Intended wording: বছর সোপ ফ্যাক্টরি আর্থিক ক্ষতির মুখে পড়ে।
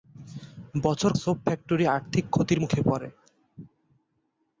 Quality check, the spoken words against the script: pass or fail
pass